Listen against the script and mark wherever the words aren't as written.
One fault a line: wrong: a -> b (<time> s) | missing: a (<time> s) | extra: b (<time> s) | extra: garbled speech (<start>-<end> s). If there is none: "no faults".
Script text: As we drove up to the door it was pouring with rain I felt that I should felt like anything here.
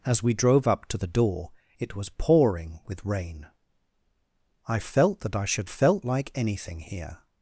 no faults